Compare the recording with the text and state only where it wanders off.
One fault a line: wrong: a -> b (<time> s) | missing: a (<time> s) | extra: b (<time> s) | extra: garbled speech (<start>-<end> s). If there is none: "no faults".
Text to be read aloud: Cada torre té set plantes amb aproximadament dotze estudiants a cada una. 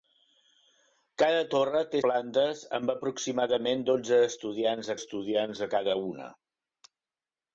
missing: set (2.0 s)
extra: estudiants (5.0 s)